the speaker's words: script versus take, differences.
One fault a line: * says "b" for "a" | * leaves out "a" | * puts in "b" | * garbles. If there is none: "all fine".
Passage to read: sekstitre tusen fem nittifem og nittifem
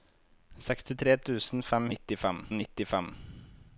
all fine